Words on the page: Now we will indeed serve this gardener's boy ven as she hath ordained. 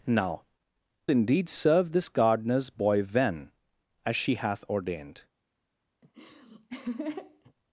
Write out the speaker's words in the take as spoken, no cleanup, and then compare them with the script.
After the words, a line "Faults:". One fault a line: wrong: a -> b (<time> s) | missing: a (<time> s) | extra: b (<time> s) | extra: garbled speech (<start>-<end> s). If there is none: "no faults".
Now indeed serve this gardener's boy ven as she hath ordained.
Faults:
missing: we will (0.4 s)